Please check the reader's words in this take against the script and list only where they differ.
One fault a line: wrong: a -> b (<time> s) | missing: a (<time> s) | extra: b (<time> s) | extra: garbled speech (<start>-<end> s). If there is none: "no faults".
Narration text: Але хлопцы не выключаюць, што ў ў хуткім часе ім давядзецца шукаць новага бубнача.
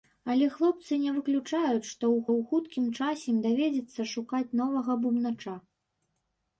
no faults